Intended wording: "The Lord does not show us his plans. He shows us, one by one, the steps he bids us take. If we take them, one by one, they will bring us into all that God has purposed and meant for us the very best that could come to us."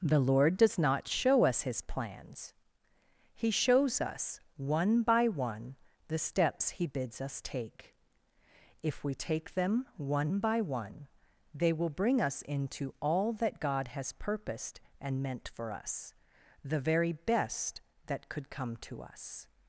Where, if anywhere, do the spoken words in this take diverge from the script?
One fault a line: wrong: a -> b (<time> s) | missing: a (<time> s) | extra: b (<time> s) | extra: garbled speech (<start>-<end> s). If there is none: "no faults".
no faults